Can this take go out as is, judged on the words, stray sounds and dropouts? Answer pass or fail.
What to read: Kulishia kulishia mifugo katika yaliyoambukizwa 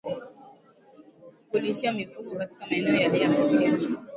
fail